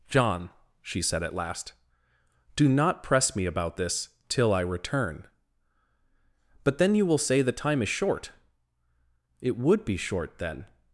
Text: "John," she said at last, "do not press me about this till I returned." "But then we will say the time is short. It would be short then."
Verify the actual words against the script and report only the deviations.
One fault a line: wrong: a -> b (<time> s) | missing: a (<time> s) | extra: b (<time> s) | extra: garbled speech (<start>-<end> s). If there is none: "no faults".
wrong: returned -> return (4.6 s)
wrong: we -> you (7.0 s)